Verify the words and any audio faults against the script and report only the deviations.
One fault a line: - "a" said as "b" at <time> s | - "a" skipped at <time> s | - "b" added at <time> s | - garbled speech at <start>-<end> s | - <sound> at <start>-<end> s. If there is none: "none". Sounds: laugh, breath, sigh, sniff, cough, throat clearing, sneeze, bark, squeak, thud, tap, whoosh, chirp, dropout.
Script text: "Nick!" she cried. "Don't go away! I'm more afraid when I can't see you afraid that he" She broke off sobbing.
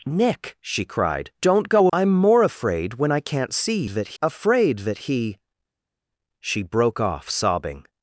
- "away" skipped at 1.9 s
- "you" said as "that" at 3.9 s